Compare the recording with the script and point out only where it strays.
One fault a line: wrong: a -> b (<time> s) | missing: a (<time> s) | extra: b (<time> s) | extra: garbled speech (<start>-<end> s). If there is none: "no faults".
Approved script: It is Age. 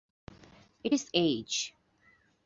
no faults